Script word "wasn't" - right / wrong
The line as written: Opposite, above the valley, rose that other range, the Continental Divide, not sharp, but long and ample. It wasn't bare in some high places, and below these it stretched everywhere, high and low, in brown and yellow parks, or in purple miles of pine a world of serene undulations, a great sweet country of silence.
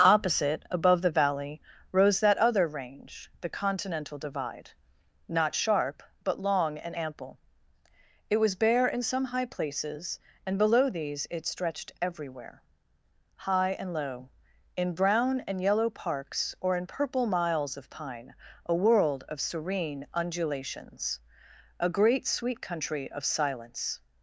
wrong